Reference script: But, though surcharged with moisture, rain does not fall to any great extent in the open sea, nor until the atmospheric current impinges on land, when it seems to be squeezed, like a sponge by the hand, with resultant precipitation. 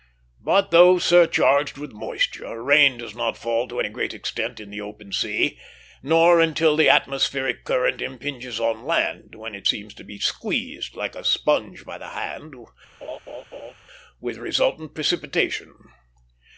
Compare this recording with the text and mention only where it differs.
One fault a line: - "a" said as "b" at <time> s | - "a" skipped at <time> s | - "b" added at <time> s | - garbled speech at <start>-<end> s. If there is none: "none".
none